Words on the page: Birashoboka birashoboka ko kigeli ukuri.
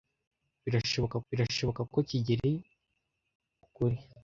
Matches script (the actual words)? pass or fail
pass